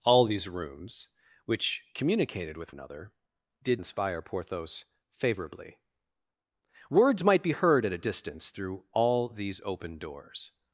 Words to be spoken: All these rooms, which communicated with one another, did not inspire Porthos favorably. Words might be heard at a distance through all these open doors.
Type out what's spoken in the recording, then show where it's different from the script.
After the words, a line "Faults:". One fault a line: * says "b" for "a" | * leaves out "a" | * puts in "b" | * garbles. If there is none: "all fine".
All these rooms, which communicated with another, did inspire Porthos favorably. Words might be heard at a distance through all these open doors.
Faults:
* leaves out "one"
* leaves out "not"